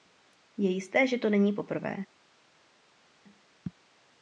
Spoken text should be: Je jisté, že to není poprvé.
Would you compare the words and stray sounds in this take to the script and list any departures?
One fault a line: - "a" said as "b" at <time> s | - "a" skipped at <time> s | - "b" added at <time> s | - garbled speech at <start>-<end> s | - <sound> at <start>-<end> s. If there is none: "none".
none